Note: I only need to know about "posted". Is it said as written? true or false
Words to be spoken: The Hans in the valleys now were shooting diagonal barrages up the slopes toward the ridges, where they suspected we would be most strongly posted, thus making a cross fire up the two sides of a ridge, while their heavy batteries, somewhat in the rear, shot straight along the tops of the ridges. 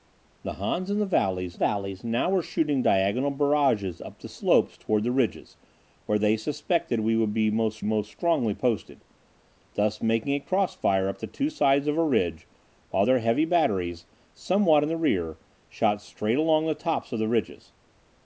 true